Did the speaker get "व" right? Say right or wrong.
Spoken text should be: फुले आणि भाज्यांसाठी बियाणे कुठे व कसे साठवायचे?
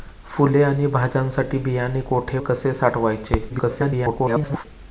wrong